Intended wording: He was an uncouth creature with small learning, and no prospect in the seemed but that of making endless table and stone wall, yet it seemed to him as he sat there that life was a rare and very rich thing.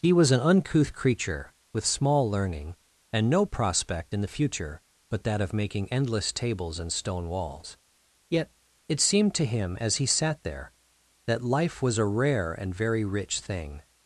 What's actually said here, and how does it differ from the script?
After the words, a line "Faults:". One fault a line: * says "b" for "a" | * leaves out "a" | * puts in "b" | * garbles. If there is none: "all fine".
He was an uncouth creature with small learning, and no prospect in the future but that of making endless tables and stone walls, yet it seemed to him as he sat there that life was a rare and very rich thing.
Faults:
* says "future" for "seemed"
* says "tables" for "table"
* says "walls" for "wall"